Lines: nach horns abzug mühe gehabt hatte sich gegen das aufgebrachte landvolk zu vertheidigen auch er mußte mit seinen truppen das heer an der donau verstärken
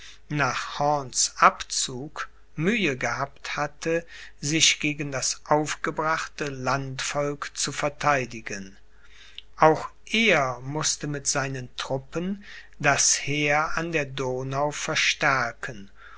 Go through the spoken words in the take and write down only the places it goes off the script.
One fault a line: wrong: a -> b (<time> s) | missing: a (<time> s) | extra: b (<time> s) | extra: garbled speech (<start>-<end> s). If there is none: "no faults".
no faults